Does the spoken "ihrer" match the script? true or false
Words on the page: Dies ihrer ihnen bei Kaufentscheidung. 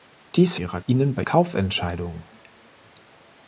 true